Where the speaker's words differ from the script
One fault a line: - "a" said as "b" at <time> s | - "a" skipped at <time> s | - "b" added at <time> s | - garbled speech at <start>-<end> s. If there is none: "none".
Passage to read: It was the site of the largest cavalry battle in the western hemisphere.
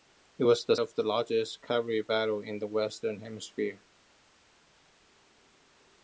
- "site" skipped at 0.8 s